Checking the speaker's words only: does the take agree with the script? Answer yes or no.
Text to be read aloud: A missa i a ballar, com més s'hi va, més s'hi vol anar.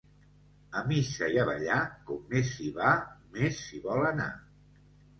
yes